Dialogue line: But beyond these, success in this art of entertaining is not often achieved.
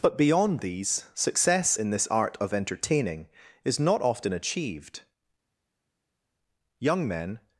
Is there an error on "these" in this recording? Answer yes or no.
no